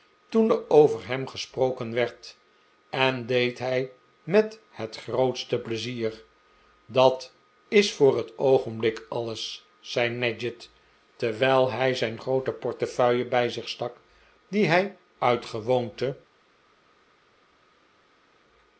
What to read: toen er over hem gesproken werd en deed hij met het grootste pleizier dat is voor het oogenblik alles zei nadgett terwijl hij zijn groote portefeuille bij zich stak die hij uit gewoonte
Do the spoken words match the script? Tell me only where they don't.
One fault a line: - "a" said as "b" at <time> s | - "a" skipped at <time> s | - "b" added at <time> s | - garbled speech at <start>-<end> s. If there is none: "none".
none